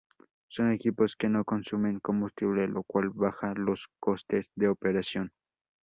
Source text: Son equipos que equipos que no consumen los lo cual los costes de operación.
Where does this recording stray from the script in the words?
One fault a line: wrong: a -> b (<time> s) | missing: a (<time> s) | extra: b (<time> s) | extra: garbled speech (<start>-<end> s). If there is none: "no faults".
missing: equipos que (1.3 s)
wrong: los -> combustible (2.0 s)
extra: baja (3.1 s)